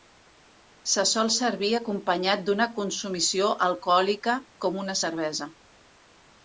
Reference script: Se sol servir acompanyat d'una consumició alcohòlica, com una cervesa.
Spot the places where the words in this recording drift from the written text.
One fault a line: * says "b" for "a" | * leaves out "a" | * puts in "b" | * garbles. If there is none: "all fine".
all fine